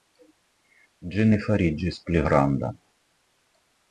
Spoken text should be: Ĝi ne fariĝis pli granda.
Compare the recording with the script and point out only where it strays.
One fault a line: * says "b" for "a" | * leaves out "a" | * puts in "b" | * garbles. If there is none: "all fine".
all fine